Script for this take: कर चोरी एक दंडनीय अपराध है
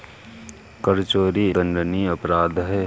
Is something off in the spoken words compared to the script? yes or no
yes